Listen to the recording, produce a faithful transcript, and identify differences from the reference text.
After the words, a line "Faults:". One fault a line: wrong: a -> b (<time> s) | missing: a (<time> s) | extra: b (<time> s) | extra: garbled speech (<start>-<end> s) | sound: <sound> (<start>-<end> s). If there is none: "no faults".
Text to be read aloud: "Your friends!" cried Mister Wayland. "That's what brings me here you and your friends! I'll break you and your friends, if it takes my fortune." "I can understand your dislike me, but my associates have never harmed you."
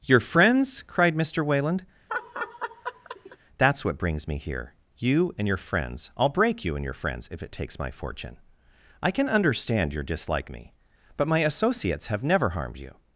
"Your friends!" cried Mister Wayland. "That's what brings me here you and your friends! I'll break you and your friends, if it takes my fortune." "I can understand your dislike me, but my associates have never harmed you."
Faults:
sound: laugh (2.1-3.4 s)